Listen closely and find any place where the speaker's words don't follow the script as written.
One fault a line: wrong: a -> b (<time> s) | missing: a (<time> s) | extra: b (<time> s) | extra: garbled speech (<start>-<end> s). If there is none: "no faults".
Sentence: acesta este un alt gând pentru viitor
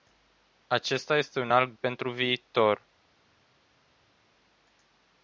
missing: gând (1.7 s)